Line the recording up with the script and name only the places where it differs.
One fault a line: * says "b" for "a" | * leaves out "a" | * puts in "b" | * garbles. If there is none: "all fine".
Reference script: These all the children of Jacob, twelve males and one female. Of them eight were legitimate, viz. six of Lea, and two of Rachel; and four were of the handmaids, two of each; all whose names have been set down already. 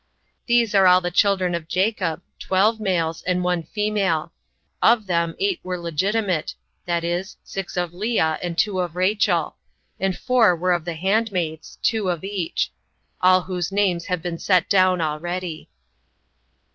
* puts in "are"